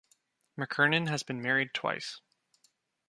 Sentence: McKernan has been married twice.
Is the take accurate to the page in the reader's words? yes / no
yes